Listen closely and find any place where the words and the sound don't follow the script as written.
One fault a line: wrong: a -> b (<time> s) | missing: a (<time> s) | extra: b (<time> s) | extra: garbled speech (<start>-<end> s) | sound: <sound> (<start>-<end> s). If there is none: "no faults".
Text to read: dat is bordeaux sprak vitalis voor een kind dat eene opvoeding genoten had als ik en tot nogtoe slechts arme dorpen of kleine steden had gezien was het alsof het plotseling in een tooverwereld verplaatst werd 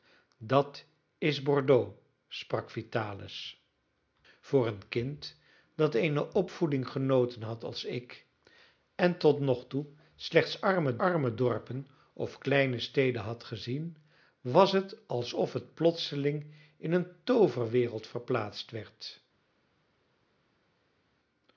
extra: arme (11.0 s)